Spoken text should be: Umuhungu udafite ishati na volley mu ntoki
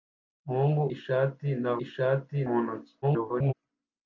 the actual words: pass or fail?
fail